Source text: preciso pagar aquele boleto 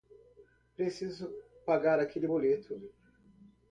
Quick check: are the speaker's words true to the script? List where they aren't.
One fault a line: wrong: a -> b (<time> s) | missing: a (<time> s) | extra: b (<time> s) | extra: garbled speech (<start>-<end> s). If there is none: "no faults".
no faults